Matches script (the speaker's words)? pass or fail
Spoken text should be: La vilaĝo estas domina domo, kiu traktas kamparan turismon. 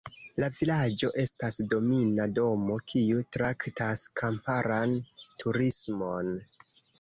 pass